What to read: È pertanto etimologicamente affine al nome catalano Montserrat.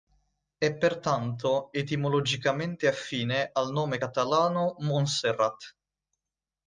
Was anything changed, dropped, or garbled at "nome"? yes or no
no